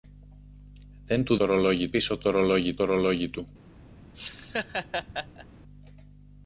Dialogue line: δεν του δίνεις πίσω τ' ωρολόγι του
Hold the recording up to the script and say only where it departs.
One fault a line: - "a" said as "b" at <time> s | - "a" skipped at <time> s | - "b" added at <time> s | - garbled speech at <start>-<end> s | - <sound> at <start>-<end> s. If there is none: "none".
- "δίνεις" said as "ωρολόγι" at 1.4 s
- "ωρολόγι" added at 2.8 s
- laugh at 4.1-5.5 s